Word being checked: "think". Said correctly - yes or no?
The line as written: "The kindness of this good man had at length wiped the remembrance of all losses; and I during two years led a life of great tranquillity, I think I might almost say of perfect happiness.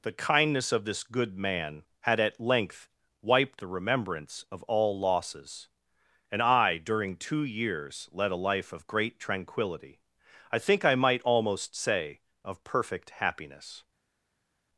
yes